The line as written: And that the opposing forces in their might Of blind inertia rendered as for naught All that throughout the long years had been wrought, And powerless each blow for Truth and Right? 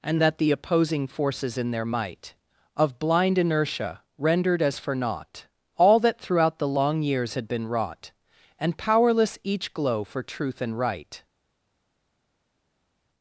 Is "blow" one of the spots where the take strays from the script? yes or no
yes